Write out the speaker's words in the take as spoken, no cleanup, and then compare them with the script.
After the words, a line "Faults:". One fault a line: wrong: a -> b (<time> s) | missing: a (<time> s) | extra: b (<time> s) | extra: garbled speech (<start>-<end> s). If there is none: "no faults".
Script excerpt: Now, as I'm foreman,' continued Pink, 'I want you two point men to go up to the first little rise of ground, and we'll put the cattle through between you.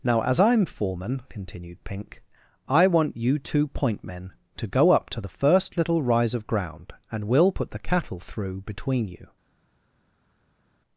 Now, as I'm foreman,' continued Pink, 'I want you two point men to go up to the first little rise of ground, and we'll put the cattle through between you.
Faults:
no faults